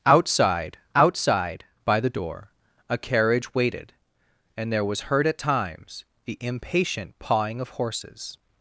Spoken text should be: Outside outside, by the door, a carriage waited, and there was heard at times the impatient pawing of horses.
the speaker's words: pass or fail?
pass